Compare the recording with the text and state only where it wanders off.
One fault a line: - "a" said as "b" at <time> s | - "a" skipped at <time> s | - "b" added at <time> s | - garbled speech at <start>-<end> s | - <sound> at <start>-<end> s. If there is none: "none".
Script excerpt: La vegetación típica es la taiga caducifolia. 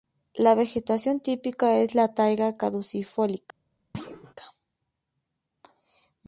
- thud at 3.9-4.3 s